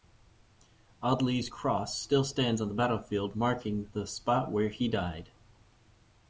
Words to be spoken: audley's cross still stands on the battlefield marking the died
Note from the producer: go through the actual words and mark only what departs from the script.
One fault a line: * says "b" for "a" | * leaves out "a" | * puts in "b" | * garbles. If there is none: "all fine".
* puts in "spot where he"